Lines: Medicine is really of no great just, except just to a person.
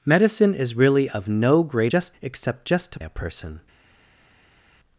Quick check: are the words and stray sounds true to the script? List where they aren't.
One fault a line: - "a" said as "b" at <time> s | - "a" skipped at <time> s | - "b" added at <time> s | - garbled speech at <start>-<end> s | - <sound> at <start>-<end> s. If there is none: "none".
none